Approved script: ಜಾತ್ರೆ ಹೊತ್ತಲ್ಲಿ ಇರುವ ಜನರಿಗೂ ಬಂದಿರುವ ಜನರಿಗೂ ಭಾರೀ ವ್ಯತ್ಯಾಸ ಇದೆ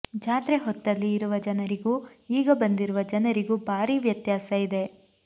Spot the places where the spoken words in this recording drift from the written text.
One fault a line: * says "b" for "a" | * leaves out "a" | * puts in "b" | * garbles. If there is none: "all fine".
* puts in "ಈಗ"